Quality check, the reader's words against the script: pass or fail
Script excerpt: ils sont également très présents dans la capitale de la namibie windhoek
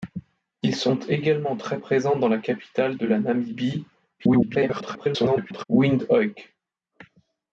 fail